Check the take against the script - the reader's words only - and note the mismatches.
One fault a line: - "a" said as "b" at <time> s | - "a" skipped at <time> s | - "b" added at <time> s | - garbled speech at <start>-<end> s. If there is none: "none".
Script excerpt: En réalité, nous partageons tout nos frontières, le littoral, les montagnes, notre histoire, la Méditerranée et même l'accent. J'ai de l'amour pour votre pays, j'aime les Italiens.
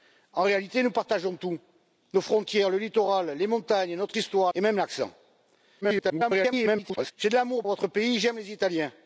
- "la Méditerranée" skipped at 4.5 s
- garbled speech at 5.8-7.1 s
- "pour" skipped at 7.6 s